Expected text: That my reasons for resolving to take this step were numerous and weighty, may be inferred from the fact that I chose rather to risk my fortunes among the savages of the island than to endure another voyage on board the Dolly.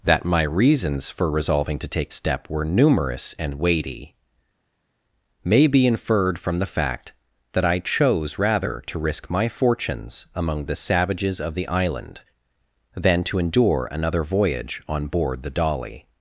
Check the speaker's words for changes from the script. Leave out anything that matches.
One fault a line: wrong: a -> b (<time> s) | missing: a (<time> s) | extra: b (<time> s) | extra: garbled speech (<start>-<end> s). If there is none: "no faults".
missing: this (2.1 s)